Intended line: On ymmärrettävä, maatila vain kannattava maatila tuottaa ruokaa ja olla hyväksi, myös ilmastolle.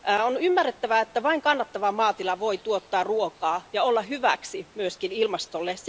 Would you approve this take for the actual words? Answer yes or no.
no